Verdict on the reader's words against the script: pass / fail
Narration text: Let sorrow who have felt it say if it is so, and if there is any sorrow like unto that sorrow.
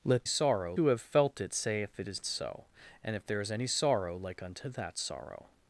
pass